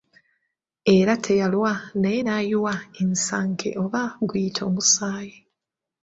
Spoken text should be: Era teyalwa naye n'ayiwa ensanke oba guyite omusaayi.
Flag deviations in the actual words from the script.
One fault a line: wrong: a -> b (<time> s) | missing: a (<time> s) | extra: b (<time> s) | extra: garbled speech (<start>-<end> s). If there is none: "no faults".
no faults